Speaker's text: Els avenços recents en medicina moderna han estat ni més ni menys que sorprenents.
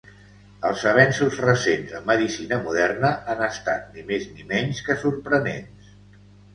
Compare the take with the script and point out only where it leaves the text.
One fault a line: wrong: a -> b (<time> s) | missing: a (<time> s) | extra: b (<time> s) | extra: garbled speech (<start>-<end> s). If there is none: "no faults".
no faults